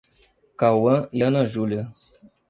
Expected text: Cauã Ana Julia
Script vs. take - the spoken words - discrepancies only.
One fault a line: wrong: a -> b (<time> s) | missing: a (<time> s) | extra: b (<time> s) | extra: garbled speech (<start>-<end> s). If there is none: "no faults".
extra: e (1.1 s)